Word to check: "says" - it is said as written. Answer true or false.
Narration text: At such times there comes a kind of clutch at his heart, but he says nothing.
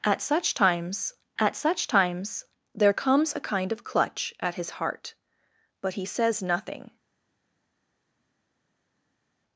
true